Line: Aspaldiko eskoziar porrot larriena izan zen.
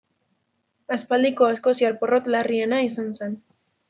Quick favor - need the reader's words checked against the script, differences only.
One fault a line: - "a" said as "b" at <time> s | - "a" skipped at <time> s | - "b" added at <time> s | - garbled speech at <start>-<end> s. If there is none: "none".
none